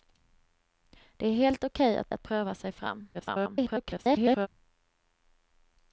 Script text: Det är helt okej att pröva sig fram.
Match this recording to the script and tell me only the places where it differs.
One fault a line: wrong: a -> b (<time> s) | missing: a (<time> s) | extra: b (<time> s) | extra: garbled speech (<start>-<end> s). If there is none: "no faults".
extra: att (2.1 s)
extra: garbled speech (3.1-4.5 s)